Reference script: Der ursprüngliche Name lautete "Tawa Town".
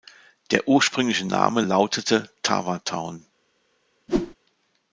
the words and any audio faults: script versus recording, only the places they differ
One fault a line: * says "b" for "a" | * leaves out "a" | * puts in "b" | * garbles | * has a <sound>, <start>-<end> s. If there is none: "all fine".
* has a whoosh, 4.1-4.3 s